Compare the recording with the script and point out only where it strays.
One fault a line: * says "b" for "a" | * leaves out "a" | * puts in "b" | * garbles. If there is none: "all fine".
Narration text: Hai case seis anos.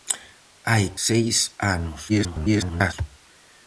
* leaves out "case"
* garbles